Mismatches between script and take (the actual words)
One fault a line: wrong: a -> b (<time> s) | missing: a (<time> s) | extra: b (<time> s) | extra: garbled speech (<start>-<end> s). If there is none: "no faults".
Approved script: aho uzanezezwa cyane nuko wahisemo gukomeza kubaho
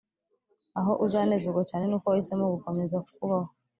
no faults